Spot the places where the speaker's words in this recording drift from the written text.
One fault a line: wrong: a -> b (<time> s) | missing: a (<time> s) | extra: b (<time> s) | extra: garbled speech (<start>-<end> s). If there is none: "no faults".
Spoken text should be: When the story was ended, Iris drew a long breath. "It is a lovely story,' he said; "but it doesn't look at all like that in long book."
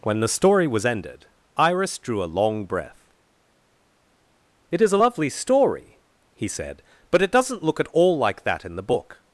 wrong: long -> the (8.7 s)